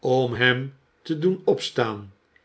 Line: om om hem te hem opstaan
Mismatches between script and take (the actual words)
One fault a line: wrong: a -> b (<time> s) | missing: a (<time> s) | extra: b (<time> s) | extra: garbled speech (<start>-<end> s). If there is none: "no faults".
missing: om (0.3 s)
wrong: hem -> doen (1.2 s)